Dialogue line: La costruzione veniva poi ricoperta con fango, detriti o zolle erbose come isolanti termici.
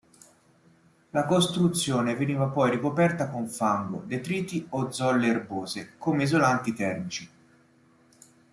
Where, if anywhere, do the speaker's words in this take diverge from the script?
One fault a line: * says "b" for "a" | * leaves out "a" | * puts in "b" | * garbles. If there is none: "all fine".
all fine